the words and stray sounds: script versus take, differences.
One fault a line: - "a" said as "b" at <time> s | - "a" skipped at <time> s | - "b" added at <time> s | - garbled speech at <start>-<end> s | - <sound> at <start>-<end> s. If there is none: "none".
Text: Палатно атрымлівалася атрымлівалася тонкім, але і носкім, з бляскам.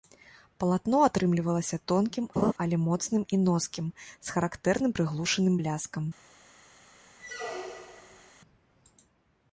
- "атрымлівалася" skipped at 1.8 s
- laugh at 2.4-2.5 s
- "моцным" added at 2.8 s
- "характэрным прыглушаным" added at 4.4 s
- squeak at 7.2-8.3 s